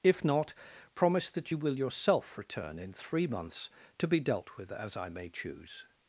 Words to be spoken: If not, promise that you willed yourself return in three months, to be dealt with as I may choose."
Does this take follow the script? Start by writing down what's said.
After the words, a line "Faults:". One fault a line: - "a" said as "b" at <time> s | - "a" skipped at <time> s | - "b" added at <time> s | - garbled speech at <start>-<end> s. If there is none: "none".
If not, promise that you will yourself return in three months, to be dealt with as I may choose."
Faults:
- "willed" said as "will" at 1.6 s